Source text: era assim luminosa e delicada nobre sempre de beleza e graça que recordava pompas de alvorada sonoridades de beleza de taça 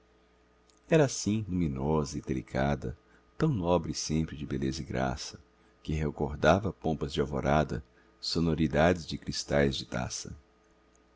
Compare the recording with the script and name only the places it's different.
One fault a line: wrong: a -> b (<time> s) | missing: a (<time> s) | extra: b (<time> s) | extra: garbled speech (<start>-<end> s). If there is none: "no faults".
extra: tão (3.3 s)
wrong: beleza -> cristais (9.2 s)